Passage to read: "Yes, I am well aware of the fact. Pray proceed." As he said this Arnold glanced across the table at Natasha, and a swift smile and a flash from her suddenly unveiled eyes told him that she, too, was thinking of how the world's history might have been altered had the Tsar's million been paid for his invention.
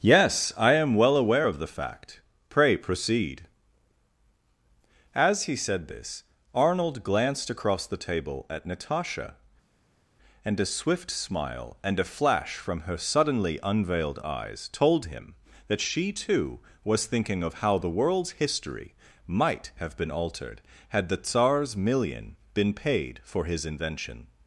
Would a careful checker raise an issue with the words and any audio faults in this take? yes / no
no